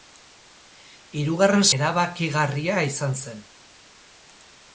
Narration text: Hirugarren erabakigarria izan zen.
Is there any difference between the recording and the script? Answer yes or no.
no